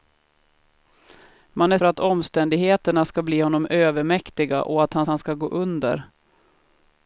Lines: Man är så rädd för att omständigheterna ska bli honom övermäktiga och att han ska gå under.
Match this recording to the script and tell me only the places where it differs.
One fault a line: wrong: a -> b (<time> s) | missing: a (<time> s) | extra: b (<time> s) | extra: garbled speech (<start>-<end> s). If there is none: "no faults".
missing: så rädd (1.8 s)
extra: han (5.1 s)